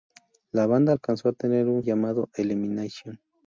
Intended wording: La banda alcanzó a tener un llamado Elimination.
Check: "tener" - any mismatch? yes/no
no